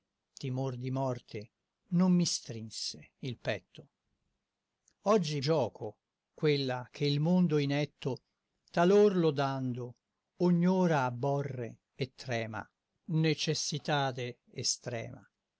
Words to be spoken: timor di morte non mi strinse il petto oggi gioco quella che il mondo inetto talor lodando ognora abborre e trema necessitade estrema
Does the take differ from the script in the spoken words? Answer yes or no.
no